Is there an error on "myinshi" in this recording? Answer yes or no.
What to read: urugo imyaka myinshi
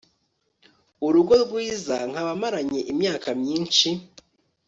no